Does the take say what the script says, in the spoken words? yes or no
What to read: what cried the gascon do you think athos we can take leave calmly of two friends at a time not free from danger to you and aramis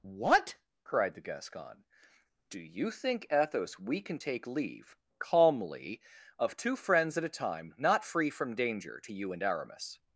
yes